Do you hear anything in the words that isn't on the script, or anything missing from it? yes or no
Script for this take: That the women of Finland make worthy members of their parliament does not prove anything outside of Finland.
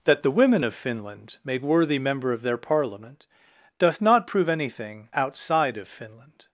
yes